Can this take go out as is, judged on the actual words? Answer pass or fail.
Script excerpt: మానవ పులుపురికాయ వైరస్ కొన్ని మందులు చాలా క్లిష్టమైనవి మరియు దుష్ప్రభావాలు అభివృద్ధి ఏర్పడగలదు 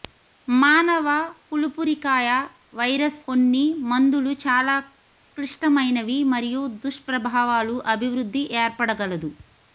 pass